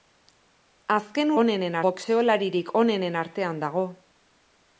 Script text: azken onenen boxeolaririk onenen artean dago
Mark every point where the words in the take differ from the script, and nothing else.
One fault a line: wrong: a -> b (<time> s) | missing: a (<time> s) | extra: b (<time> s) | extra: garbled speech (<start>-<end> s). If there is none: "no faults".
no faults